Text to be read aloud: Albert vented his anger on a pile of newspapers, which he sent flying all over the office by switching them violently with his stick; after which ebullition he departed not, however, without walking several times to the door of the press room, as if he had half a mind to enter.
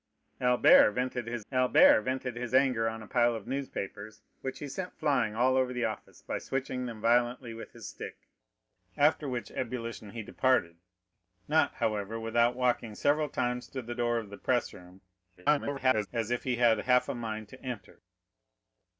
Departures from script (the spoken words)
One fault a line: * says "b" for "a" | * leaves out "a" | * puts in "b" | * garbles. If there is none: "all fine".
* puts in "albert vented his"
* garbles